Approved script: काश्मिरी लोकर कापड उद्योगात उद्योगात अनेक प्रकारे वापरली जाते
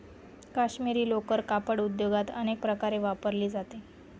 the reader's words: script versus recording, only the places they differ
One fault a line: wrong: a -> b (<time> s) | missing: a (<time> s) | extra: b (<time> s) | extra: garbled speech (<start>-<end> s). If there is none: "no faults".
missing: उद्योगात (2.3 s)